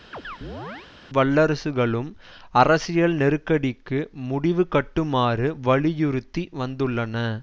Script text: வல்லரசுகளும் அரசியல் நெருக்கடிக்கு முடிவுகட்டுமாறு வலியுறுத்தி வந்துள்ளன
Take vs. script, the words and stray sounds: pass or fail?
fail